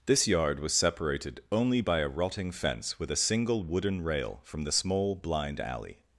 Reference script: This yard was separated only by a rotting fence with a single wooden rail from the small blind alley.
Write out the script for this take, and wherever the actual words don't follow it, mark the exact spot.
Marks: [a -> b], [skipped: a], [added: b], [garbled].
This yard was separated only by a rotting fence with a single wooden rail from the small blind alley.